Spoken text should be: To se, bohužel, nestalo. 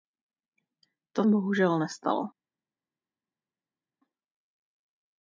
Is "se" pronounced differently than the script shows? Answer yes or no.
yes